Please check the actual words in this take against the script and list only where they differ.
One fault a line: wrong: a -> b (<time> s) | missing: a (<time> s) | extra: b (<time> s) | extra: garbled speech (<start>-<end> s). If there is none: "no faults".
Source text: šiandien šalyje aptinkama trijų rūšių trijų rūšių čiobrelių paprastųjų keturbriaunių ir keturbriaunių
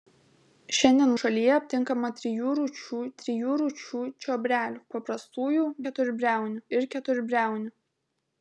no faults